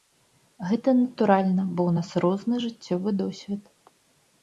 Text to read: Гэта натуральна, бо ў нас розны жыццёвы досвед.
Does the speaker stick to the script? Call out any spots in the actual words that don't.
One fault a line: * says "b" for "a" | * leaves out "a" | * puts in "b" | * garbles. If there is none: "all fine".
all fine